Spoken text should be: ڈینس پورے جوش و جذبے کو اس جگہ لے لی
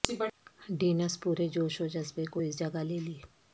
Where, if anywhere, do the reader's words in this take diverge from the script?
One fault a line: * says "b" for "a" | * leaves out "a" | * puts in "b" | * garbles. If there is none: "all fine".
all fine